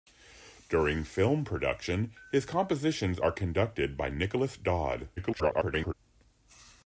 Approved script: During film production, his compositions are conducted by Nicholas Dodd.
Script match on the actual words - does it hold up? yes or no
no